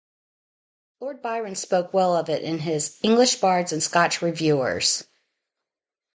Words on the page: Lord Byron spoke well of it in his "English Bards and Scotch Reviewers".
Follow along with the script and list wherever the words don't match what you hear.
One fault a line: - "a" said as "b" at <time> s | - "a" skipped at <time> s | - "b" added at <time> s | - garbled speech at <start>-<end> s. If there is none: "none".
none